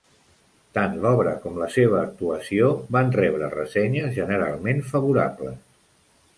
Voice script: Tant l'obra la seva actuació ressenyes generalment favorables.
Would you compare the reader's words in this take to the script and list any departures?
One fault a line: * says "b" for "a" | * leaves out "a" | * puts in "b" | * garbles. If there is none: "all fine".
* puts in "com"
* puts in "van rebre"